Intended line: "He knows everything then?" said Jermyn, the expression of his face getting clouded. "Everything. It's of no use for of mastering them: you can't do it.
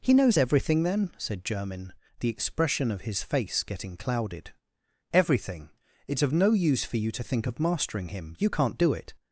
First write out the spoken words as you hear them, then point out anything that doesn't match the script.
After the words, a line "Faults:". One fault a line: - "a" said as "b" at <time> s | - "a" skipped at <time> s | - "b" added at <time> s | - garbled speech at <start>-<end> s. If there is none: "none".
"He knows everything then?" said Jermyn, the expression of his face getting clouded. "Everything. It's of no use for you to think of mastering him: you can't do it.
Faults:
- "you to think" added at 7.0 s
- "them" said as "him" at 8.1 s